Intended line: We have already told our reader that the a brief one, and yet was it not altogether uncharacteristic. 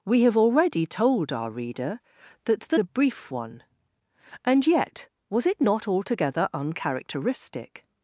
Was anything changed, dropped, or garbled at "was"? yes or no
no